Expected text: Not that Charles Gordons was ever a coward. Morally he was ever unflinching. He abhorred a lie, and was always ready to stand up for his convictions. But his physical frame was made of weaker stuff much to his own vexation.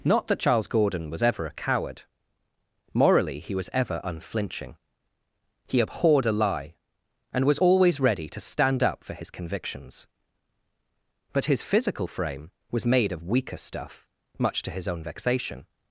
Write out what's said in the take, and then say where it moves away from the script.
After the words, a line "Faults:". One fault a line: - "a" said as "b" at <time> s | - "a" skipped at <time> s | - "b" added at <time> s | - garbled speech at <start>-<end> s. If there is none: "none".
Not that Charles Gordon was ever a coward. Morally he was ever unflinching. He abhorred a lie, and was always ready to stand up for his convictions. But his physical frame was made of weaker stuff much to his own vexation.
Faults:
- "Gordons" said as "Gordon" at 0.7 s